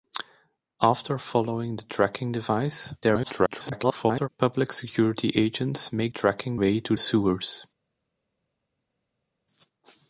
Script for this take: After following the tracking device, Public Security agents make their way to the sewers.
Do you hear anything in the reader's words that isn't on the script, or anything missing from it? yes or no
yes